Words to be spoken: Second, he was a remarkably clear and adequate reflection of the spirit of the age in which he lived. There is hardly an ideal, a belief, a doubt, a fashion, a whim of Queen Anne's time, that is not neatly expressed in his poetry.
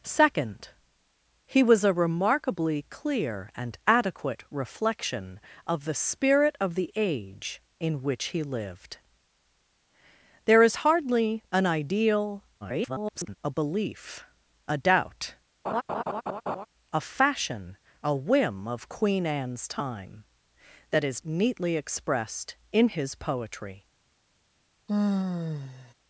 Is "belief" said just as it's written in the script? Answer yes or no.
yes